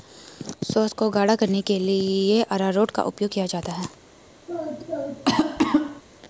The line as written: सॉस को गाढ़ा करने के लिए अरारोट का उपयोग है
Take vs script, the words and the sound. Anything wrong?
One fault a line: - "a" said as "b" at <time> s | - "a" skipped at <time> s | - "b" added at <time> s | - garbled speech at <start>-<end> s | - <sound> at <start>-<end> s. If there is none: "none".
- "किया जाता" added at 3.3 s
- cough at 4.5-6.0 s